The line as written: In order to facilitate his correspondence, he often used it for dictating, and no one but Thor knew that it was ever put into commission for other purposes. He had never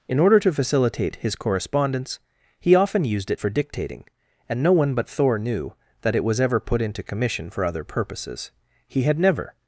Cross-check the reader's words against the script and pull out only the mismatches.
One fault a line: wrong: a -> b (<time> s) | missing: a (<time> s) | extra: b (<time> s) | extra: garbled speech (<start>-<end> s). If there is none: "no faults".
no faults